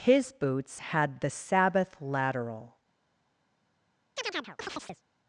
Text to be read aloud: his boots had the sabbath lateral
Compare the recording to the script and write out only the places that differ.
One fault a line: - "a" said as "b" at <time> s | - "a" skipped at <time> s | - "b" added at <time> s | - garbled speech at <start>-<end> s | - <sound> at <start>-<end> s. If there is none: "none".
- chirp at 4.2-5.0 s